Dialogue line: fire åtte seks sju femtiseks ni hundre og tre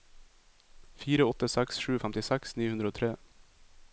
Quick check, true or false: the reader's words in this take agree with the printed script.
true